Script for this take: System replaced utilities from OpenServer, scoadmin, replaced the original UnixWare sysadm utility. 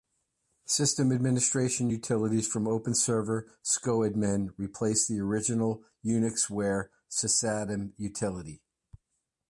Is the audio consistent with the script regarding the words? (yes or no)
no